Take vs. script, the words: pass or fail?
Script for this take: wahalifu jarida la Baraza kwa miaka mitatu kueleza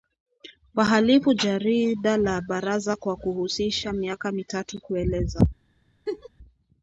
fail